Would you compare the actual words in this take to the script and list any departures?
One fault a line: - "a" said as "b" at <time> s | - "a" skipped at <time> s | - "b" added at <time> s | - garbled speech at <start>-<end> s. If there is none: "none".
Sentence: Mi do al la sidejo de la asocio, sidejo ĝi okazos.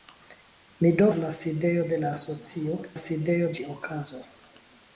none